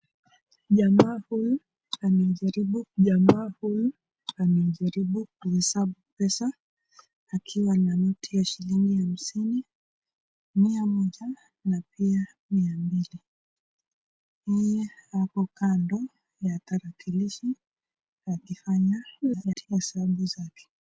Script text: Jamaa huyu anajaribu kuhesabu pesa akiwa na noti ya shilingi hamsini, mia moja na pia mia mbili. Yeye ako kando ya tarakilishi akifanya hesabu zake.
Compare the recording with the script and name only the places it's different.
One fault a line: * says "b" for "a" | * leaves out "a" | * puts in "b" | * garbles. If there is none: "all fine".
* puts in "jamaa huyu anajaribu"
* garbles